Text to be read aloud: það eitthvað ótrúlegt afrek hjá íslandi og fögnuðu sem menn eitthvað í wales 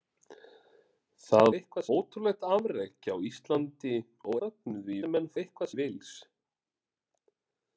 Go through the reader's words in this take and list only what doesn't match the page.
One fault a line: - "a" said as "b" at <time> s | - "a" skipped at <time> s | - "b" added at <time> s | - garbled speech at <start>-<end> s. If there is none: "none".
none